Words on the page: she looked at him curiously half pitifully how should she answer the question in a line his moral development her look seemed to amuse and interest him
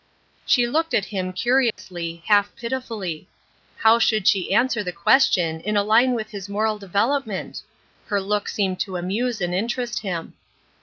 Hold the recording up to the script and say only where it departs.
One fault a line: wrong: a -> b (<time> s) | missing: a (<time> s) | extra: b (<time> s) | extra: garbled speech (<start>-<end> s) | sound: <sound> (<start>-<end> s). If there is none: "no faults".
sound: dropout (1.7-1.8 s)
extra: with (6.2 s)